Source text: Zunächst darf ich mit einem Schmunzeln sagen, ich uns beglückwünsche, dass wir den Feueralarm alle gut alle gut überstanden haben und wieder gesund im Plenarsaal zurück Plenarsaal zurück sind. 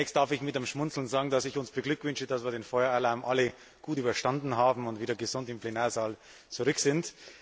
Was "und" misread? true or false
false